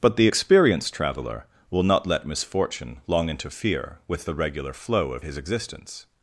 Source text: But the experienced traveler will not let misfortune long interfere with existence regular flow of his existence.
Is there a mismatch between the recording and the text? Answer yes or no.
yes